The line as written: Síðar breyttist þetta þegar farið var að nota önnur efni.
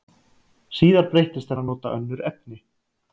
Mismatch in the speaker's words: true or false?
true